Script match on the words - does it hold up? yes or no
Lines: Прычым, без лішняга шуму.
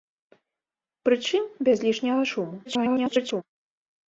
no